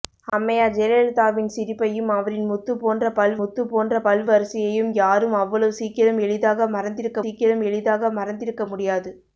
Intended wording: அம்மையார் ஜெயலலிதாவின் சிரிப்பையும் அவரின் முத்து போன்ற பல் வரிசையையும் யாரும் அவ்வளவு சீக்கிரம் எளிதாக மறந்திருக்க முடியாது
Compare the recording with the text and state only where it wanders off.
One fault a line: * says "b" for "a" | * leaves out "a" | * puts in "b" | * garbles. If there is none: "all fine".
* puts in "முத்து போன்ற பல்"
* puts in "சீக்கிரம் எளிதாக மறந்திருக்க"